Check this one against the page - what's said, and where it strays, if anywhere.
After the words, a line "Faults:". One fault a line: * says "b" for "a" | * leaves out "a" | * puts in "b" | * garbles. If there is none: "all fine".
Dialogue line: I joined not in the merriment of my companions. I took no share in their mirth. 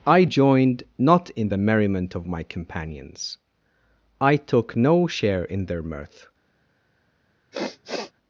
I joined not in the merriment of my companions. I took no share in their mirth.
Faults:
all fine